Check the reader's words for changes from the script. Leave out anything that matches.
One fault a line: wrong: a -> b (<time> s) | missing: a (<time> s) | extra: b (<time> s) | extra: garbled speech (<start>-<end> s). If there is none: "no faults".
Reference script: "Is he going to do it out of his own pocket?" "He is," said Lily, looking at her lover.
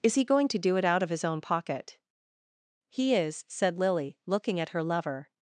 no faults